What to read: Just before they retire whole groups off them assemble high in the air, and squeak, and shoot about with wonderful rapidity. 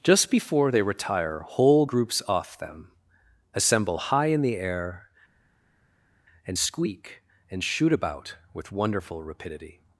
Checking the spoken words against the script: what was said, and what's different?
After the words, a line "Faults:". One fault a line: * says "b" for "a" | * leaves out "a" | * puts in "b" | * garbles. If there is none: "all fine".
Just before they retire whole groups off them assemble high in the air, and squeak, and shoot about with wonderful rapidity.
Faults:
all fine